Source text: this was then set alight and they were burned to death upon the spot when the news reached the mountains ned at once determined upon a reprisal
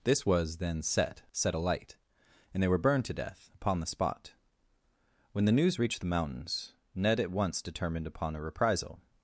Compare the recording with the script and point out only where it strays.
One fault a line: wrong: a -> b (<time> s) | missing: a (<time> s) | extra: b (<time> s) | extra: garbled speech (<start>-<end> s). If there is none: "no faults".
extra: set (1.3 s)